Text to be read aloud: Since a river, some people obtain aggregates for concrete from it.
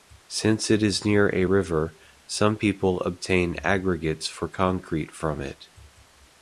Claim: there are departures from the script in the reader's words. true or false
true